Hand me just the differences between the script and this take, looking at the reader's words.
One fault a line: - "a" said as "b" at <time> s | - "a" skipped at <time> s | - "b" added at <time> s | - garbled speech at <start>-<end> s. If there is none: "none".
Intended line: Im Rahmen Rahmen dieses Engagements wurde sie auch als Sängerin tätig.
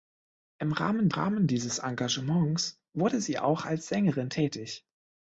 none